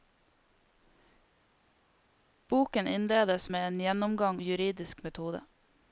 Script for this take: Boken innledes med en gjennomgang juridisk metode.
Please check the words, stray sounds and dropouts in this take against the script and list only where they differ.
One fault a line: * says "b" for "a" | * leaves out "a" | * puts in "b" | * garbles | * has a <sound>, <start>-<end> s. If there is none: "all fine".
all fine